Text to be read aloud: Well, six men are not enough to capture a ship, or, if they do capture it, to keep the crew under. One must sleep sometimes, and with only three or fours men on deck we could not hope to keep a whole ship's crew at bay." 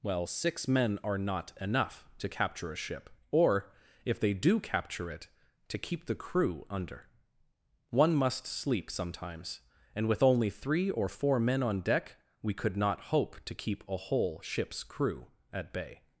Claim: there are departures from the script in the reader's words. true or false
true